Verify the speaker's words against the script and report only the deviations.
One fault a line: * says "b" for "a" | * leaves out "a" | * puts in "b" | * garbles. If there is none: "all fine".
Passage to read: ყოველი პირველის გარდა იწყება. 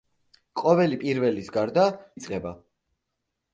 all fine